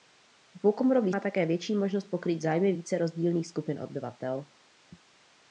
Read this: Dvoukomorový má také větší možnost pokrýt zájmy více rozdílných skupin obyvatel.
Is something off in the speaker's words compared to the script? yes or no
no